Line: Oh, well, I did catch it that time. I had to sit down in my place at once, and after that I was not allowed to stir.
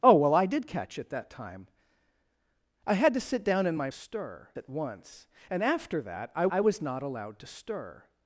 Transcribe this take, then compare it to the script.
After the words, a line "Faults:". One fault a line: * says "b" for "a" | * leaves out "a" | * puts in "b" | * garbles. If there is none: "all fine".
Oh, well, I did catch it that time. I had to sit down in my stir at once, and after that I I was not allowed to stir.
Faults:
* says "stir" for "place"
* puts in "I"